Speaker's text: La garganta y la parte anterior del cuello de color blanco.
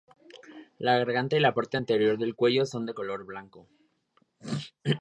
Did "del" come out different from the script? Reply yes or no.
no